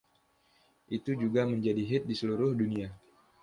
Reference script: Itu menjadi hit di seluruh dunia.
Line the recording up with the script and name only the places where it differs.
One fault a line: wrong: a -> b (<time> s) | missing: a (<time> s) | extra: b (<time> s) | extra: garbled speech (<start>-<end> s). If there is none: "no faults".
extra: juga (1.1 s)